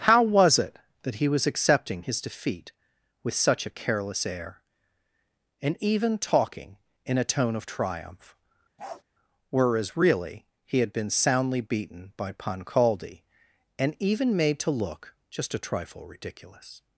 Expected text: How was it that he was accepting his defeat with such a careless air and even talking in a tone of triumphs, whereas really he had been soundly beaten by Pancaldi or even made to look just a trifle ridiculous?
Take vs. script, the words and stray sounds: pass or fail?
fail